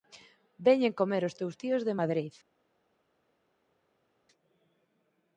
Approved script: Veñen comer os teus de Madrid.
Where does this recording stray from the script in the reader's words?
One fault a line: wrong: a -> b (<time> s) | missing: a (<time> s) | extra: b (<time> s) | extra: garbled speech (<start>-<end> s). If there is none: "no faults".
extra: tíos (1.6 s)